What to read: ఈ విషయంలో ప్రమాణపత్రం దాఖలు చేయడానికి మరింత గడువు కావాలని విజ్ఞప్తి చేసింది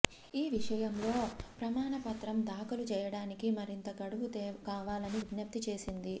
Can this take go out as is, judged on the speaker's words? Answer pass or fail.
pass